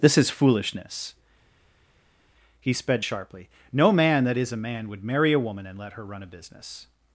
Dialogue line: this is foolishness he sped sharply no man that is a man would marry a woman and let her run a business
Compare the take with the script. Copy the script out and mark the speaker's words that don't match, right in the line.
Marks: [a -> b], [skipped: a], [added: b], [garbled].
this is foolishness he sped sharply no man that is a man would marry a woman and let her run a business